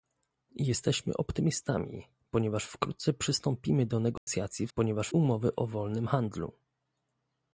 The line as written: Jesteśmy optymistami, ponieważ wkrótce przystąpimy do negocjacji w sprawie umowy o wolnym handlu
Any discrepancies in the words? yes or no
yes